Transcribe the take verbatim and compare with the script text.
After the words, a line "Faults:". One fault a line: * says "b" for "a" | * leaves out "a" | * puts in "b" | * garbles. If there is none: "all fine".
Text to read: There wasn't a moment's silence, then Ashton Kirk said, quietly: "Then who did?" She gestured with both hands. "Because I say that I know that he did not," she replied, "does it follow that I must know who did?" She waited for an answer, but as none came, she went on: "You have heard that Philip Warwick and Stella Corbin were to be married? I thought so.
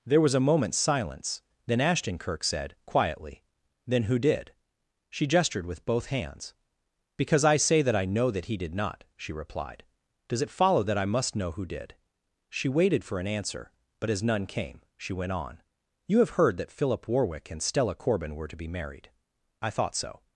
There was a moment's silence, then Ashton Kirk said, quietly: "Then who did?" She gestured with both hands. "Because I say that I know that he did not," she replied, "does it follow that I must know who did?" She waited for an answer, but as none came, she went on: "You have heard that Philip Warwick and Stella Corbin were to be married? I thought so.
Faults:
* says "was" for "wasn't"